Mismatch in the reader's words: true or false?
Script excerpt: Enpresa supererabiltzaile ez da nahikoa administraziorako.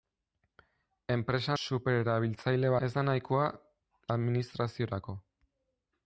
false